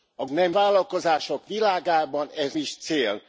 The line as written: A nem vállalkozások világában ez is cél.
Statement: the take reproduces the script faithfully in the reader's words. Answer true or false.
true